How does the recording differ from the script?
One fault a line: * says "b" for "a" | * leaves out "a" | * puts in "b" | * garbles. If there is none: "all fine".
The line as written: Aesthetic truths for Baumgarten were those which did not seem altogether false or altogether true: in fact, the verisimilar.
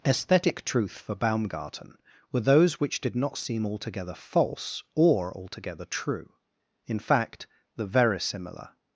* says "truth" for "truths"